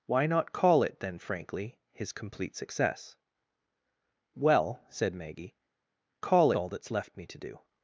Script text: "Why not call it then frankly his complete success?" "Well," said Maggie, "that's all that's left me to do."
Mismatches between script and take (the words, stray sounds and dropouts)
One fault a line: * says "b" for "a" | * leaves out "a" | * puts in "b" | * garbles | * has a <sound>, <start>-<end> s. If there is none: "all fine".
* says "call" for "that's"